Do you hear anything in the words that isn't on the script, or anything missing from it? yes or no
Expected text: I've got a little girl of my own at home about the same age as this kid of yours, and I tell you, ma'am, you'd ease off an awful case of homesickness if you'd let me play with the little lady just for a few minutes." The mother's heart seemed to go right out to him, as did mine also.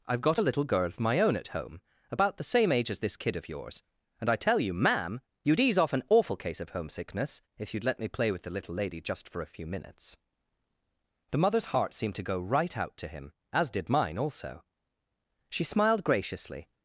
yes